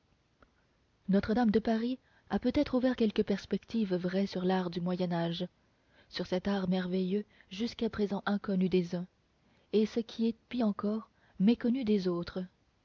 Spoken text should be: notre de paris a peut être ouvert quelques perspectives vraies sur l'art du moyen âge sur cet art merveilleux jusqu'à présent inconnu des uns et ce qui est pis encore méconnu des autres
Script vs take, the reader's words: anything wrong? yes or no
yes